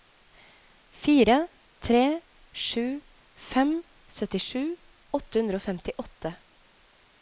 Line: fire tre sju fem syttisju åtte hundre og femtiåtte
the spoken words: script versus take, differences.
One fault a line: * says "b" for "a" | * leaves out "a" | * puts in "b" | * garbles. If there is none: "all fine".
all fine